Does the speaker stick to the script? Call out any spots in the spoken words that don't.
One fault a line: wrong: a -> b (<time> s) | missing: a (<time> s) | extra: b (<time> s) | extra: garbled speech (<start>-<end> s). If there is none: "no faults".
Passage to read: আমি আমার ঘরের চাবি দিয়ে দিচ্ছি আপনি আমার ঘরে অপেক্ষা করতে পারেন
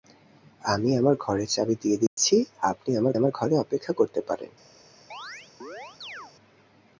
extra: আমার (3.2 s)